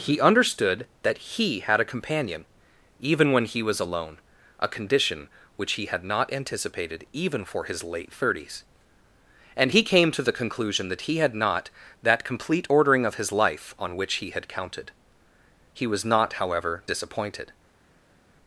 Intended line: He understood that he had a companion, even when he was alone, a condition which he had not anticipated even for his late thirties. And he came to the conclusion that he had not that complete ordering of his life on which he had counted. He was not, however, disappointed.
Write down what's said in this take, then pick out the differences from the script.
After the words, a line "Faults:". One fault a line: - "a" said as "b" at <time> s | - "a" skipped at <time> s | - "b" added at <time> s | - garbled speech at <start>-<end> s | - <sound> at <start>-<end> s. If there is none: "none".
He understood that he had a companion, even when he was alone, a condition which he had not anticipated even for his late thirties. And he came to the conclusion that he had not that complete ordering of his life on which he had counted. He was not, however, disappointed.
Faults:
none